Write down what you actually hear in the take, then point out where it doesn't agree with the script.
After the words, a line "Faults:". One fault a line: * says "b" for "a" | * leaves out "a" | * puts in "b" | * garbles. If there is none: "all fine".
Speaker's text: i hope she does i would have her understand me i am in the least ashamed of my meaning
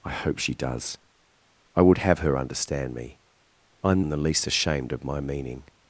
i hope she does i would have her understand me i am in the least ashamed of my meaning
Faults:
all fine